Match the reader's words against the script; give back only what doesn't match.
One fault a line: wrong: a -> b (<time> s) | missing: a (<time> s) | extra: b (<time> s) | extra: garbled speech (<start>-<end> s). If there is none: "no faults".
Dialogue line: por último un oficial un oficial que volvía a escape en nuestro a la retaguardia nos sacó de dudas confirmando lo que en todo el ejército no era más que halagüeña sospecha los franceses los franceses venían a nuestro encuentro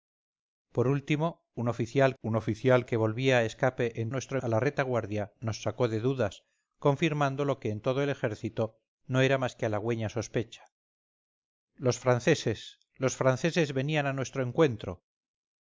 no faults